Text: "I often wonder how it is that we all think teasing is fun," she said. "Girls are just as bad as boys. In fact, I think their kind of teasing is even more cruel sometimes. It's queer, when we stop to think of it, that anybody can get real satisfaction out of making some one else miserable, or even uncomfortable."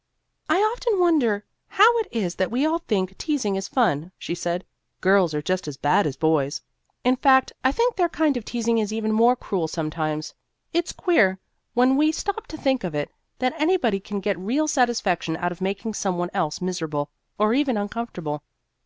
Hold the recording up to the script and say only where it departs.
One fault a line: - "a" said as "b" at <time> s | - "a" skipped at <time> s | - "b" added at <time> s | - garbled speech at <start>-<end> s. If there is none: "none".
none